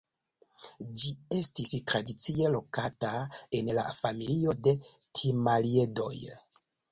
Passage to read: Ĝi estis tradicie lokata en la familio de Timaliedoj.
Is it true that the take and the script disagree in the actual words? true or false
false